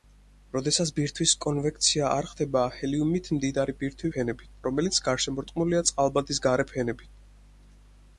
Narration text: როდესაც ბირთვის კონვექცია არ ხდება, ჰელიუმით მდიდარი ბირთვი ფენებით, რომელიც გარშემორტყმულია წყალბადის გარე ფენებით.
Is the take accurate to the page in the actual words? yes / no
yes